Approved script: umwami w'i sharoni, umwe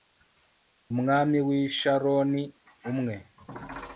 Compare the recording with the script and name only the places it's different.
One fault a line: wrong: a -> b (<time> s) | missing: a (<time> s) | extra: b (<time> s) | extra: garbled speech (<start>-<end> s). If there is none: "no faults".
no faults